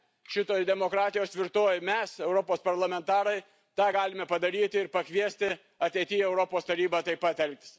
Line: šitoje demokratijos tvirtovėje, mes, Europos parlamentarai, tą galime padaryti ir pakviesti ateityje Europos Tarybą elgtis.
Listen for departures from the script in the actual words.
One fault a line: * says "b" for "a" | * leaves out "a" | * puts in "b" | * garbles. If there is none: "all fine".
* puts in "taip pat"